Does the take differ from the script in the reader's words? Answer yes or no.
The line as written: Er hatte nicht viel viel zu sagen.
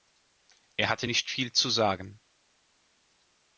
yes